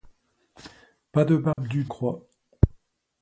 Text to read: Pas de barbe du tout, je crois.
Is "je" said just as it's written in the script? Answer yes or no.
no